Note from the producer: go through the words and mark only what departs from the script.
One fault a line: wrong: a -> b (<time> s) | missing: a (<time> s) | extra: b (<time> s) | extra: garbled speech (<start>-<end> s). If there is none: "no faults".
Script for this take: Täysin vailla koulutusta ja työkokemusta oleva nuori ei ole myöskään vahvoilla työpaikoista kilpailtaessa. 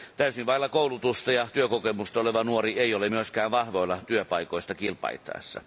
no faults